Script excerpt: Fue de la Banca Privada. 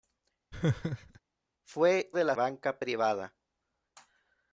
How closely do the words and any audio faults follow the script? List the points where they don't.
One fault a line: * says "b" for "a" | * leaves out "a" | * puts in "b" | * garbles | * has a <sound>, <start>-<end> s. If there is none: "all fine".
* has a laugh, 0.5-1.2 s